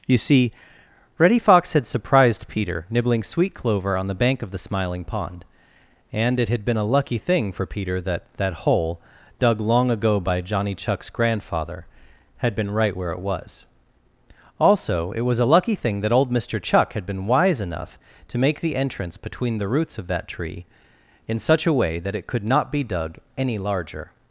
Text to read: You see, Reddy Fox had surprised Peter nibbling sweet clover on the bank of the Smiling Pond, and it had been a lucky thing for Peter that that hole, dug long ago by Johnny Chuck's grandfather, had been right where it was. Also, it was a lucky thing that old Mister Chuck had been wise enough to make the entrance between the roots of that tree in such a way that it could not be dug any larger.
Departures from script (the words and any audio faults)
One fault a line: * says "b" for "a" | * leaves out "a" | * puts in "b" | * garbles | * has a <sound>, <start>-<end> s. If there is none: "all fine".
all fine